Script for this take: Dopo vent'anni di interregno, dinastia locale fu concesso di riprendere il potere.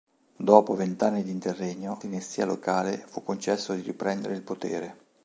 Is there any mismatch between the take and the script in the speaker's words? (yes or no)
no